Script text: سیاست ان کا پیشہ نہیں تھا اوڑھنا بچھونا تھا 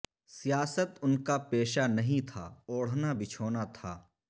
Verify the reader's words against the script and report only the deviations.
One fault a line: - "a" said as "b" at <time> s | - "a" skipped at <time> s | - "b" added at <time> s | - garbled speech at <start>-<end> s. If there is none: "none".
none